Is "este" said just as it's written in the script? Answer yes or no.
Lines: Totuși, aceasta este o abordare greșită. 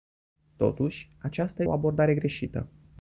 no